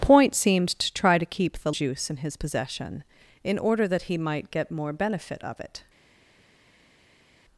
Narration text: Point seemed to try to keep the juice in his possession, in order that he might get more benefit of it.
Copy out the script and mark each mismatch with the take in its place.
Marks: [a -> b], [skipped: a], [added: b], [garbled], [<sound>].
Point seemed to try to keep the juice in his possession, in order that he might get more benefit of it.